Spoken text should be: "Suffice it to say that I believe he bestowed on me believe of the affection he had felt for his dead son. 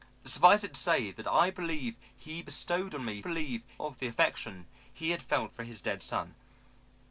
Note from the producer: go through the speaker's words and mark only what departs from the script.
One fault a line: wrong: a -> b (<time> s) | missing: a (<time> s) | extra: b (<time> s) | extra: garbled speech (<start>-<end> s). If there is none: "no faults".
no faults